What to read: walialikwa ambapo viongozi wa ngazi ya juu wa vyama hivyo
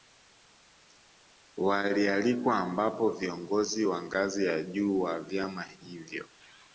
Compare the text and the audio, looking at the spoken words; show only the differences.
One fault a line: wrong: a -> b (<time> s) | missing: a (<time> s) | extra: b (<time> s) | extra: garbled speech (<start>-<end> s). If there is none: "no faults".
no faults